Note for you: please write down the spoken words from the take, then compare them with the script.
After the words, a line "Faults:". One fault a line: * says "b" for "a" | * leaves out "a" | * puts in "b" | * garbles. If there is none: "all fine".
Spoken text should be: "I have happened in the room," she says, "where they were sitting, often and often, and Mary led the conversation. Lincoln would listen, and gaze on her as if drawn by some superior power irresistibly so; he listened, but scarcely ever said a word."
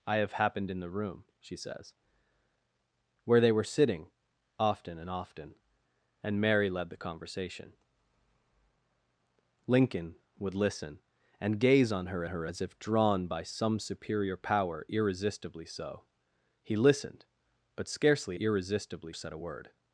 "I have happened in the room," she says, "where they were sitting, often and often, and Mary led the conversation. Lincoln would listen, and gaze on her her as if drawn by some superior power irresistibly so; he listened, but scarcely irresistibly said a word."
Faults:
* puts in "her"
* says "irresistibly" for "ever"